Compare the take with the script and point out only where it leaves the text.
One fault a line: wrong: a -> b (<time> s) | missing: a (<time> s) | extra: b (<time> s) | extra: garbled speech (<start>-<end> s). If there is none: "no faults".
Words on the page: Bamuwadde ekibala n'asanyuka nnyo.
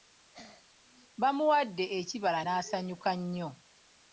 no faults